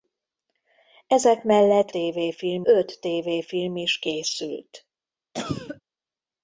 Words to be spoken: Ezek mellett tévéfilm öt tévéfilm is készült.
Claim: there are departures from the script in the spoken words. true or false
false